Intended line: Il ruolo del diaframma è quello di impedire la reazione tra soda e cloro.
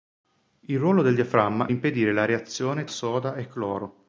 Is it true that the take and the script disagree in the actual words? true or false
true